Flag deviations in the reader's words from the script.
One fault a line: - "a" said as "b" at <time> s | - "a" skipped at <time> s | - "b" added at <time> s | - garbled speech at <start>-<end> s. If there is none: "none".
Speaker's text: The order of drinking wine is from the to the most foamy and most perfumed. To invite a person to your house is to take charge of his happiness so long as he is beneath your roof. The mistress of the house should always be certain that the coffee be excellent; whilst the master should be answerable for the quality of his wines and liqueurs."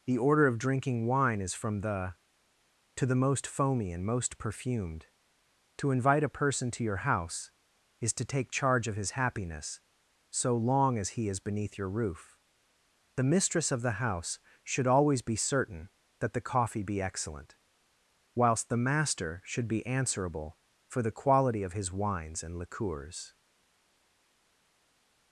none